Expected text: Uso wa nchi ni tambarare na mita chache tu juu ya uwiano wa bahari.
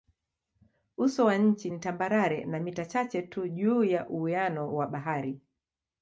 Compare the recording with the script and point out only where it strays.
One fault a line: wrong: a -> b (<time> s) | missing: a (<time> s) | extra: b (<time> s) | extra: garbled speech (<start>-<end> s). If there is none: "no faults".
no faults